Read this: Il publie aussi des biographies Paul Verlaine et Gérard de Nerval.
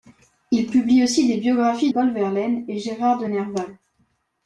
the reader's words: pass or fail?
pass